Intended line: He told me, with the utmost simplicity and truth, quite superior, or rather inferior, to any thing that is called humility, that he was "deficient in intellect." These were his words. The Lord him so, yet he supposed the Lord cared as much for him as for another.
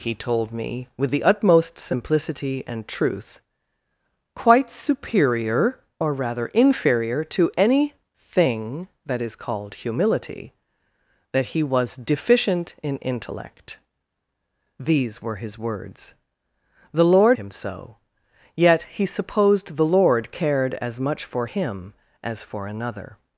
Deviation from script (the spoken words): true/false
false